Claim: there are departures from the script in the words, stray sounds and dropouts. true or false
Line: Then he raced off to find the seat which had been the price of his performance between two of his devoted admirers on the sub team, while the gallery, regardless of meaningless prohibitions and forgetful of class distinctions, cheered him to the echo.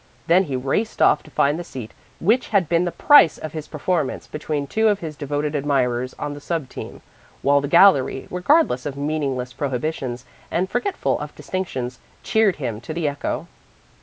true